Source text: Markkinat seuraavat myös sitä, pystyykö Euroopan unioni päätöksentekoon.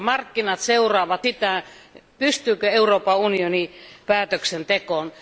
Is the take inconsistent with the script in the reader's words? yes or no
yes